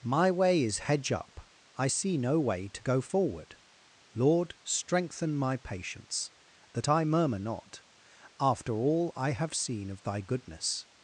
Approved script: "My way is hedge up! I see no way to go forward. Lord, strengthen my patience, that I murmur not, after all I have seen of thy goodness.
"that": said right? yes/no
yes